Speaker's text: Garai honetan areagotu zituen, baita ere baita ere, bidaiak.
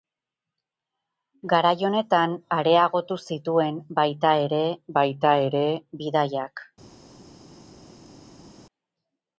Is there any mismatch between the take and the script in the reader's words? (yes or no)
no